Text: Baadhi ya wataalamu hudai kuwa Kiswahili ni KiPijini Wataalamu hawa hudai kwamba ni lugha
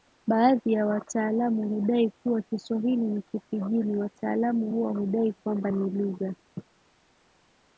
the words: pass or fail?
pass